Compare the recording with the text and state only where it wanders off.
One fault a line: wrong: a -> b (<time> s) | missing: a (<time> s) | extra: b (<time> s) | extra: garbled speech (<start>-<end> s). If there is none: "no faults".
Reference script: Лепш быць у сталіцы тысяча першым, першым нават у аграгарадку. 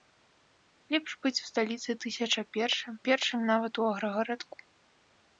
no faults